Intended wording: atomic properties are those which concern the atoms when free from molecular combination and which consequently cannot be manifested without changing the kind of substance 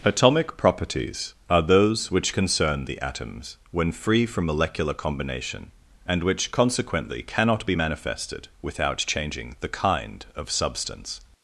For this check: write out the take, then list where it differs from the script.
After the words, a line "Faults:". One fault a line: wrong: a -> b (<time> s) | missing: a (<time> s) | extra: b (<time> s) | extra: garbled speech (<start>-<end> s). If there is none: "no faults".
atomic properties are those which concern the atoms when free from molecular combination and which consequently cannot be manifested without changing the kind of substance
Faults:
no faults